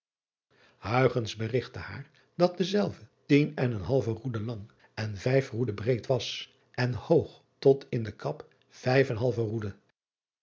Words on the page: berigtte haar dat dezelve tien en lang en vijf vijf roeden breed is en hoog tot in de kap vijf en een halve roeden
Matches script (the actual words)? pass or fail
fail